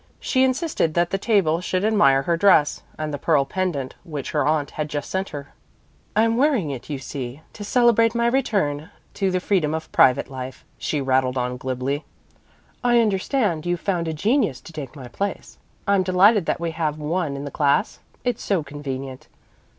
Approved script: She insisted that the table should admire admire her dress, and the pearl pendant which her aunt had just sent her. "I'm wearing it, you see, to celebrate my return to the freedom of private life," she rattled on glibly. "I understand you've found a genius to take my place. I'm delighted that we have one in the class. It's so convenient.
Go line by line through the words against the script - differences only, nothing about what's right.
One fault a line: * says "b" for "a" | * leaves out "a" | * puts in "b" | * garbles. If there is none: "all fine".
* leaves out "admire"